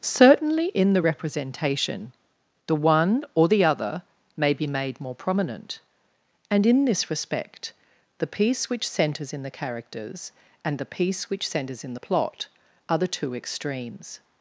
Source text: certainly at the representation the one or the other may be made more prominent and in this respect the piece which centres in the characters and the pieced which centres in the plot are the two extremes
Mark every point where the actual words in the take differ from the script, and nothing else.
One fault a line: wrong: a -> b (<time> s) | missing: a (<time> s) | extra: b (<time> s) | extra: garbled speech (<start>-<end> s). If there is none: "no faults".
wrong: at -> in (0.7 s)
wrong: pieced -> piece (10.8 s)